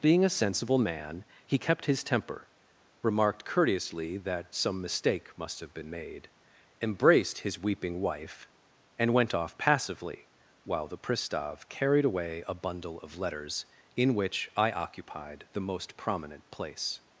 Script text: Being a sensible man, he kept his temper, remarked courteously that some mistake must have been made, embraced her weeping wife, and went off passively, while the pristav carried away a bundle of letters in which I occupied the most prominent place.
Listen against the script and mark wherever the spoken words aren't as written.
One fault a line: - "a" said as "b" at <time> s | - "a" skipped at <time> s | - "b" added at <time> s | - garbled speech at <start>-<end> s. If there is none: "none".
- "her" said as "his" at 7.4 s